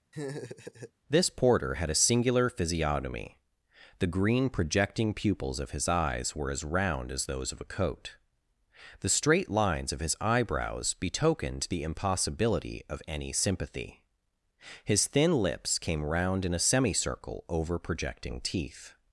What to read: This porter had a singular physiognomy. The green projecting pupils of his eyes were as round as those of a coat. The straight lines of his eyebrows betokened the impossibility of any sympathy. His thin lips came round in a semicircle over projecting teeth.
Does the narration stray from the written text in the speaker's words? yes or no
no